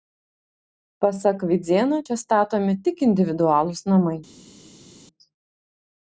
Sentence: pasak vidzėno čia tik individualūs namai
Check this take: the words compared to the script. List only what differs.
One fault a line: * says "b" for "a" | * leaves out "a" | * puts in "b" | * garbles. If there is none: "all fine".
* puts in "statomi"